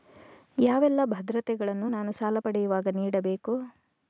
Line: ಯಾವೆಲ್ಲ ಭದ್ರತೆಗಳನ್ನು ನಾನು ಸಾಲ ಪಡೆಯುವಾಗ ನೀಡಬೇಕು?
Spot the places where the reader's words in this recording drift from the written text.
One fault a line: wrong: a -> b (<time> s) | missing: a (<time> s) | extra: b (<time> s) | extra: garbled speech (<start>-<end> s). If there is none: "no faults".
no faults